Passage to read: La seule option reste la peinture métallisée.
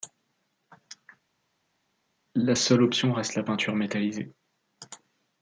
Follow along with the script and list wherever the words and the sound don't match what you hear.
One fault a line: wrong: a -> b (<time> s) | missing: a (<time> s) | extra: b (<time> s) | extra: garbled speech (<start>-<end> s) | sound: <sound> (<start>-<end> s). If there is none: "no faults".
no faults